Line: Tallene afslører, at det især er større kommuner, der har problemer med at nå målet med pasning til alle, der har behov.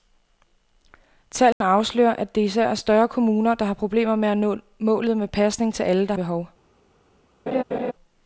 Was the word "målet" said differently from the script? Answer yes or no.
no